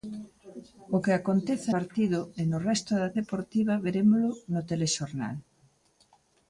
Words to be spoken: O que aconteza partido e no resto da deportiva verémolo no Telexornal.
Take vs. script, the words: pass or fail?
pass